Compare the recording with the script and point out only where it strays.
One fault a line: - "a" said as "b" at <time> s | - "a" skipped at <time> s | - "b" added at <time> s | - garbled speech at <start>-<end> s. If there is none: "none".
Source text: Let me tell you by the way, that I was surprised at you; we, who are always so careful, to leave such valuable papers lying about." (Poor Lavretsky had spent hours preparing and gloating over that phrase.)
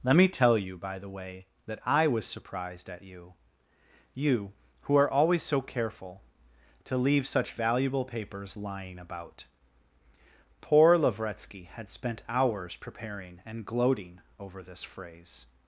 - "we" said as "you" at 4.2 s
- "that" said as "this" at 14.6 s